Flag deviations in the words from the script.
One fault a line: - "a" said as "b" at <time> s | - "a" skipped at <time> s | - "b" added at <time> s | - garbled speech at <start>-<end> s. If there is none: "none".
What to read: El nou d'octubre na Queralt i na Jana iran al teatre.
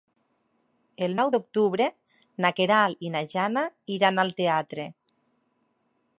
none